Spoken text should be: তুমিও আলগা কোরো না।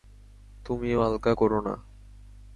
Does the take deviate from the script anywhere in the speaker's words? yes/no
no